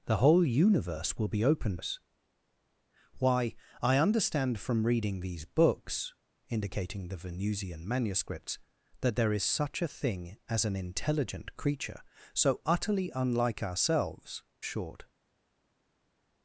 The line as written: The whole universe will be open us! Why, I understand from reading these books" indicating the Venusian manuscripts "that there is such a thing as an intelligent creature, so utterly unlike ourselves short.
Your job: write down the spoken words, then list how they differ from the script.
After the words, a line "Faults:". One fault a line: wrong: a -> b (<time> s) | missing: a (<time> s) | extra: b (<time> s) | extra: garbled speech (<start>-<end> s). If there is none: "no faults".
The whole universe will be open us! Why, I understand from reading these books" indicating the Venusian manuscripts "that there is such a thing as an intelligent creature, so utterly unlike ourselves short.
Faults:
no faults